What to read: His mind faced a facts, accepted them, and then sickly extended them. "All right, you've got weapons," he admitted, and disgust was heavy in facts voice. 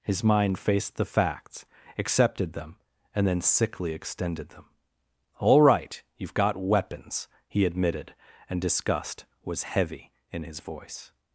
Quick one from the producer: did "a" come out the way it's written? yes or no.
no